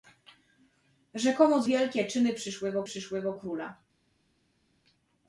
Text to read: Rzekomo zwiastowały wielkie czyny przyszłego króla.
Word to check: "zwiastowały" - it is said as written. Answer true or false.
false